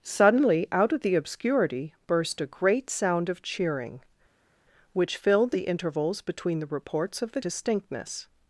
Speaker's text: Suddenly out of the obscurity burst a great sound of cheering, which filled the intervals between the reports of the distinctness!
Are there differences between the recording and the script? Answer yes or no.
no